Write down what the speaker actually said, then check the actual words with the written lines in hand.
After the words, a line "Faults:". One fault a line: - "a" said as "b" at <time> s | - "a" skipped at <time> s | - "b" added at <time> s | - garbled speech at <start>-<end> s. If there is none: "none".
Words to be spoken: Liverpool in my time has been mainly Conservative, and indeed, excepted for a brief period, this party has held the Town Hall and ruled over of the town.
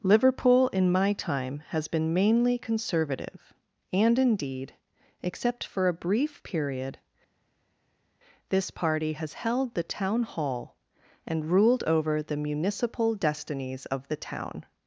Liverpool in my time has been mainly Conservative, and indeed, except for a brief period, this party has held the Town Hall and ruled over the municipal destinies of the town.
Faults:
- "excepted" said as "except" at 5.2 s
- "the municipal destinies" added at 12.2 s